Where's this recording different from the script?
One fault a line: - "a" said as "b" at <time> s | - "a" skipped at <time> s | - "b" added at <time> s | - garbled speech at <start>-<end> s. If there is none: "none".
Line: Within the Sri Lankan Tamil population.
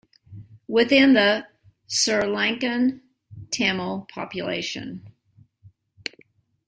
none